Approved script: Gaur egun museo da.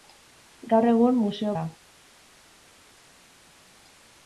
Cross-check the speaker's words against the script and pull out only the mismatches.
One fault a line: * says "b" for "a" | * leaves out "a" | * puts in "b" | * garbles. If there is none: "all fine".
all fine